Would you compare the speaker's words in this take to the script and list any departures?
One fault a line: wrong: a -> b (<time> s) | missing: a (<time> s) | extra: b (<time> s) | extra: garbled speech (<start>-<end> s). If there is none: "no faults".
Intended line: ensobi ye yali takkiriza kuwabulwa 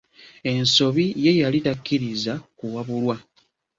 no faults